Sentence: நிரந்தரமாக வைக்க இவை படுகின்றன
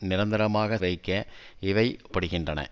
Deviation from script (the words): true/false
false